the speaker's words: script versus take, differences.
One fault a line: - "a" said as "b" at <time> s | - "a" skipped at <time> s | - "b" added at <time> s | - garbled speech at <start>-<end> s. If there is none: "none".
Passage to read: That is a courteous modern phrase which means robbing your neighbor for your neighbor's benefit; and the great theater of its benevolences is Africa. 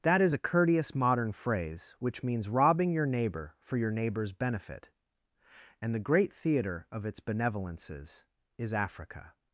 none